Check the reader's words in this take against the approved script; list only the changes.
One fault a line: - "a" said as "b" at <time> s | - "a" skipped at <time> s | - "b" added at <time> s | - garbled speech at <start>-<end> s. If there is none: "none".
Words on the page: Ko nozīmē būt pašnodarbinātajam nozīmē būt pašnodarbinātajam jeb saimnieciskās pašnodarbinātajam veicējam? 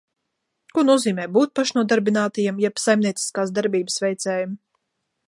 - "nozīmē būt pašnodarbinātajam" skipped at 2.6 s
- "pašnodarbinātajam" said as "darbības" at 3.6 s